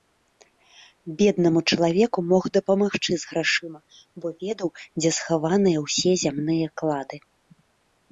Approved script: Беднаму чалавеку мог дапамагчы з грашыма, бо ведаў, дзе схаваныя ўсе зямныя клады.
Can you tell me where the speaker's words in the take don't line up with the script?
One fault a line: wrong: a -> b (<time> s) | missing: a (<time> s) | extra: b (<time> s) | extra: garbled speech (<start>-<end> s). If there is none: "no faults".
no faults